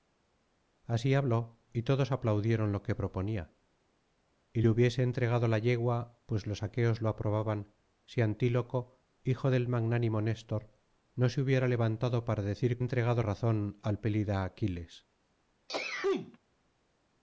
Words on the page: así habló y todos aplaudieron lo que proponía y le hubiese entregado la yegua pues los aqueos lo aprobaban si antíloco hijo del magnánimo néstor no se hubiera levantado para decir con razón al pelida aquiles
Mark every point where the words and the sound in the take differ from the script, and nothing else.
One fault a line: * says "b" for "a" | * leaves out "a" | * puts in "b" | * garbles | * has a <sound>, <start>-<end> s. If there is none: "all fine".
* says "entregado" for "con"
* has a sneeze, 15.7-16.4 s